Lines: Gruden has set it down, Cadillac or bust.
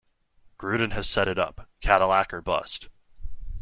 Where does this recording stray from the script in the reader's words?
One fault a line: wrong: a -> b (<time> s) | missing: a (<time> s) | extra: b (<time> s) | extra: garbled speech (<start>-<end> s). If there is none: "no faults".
wrong: down -> up (1.4 s)